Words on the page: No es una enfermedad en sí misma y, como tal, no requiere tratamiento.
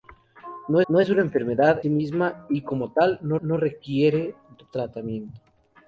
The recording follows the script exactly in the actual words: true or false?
false